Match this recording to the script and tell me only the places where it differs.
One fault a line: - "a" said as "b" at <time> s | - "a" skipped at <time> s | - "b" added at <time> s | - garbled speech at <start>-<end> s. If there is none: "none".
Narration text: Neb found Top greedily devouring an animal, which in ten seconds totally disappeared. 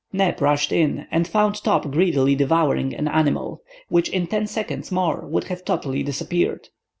- "rushed in and" added at 0.4 s
- "more would have" added at 4.9 s